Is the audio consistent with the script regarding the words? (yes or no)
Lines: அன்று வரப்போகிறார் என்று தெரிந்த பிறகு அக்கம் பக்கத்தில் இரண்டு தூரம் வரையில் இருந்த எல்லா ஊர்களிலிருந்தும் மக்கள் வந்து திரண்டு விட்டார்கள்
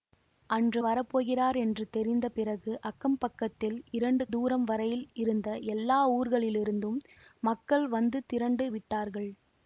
yes